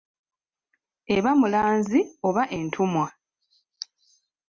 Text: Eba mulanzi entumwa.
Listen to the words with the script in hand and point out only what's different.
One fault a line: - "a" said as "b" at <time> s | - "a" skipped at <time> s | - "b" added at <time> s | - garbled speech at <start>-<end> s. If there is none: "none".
- "oba" added at 2.3 s